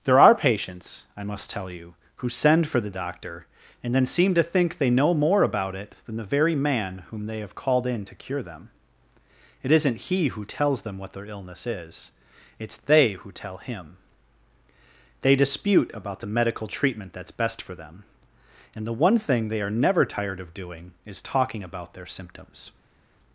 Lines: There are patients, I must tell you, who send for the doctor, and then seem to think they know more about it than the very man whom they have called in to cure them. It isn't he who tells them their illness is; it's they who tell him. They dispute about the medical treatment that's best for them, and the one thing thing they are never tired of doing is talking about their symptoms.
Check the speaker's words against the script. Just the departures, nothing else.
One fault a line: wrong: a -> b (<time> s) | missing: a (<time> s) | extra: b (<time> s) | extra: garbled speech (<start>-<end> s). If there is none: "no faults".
extra: what (11.0 s)
missing: thing (19.5 s)